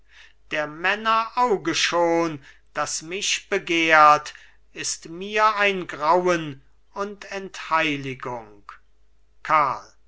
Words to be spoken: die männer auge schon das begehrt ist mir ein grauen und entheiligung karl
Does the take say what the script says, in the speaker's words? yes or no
no